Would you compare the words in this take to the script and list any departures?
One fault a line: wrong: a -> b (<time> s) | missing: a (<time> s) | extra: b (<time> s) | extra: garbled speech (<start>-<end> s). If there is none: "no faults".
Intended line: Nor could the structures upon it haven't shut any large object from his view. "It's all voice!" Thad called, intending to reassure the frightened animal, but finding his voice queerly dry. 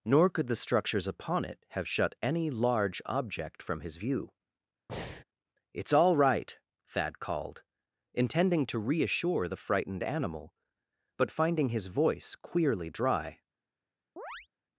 wrong: haven't -> have (1.7 s)
wrong: voice -> right (6.2 s)